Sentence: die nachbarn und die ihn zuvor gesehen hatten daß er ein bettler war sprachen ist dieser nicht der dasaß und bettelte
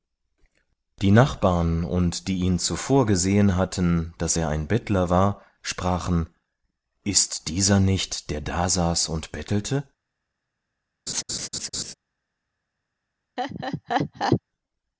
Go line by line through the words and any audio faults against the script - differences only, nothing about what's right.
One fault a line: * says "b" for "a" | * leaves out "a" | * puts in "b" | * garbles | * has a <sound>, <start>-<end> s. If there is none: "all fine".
* has a laugh, 11.1-11.9 s
* has a laugh, 13.4-14.4 s